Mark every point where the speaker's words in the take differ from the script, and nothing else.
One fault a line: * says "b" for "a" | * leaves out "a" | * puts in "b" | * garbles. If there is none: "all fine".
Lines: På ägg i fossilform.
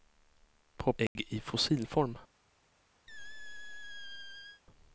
all fine